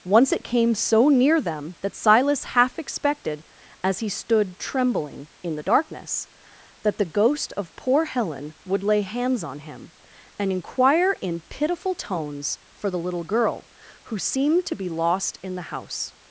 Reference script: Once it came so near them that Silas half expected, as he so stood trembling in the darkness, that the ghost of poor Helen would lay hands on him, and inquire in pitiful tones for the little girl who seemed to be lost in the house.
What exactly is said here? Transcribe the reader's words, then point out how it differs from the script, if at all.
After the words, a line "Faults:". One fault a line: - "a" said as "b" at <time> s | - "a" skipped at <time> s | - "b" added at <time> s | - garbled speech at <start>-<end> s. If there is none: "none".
Once it came so near them that Silas half expected, as he stood trembling in the darkness, that the ghost of poor Helen would lay hands on him, and inquire in pitiful tones for the little girl who seemed to be lost in the house.
Faults:
- "so" skipped at 4.1 s